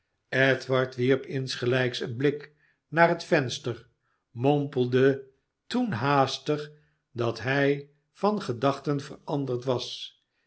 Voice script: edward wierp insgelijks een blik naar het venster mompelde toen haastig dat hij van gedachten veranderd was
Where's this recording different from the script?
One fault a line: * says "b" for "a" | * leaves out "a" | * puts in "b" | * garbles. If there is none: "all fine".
all fine